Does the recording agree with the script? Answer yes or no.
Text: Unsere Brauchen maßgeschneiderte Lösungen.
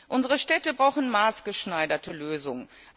no